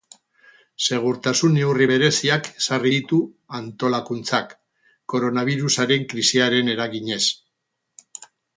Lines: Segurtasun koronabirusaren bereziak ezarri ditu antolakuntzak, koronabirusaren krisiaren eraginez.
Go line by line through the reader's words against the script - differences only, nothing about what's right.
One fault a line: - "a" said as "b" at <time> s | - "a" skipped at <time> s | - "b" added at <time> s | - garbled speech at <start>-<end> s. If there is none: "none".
- "koronabirusaren" said as "neurri" at 1.6 s